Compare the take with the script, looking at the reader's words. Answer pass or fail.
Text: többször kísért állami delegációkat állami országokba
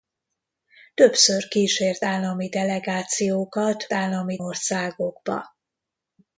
pass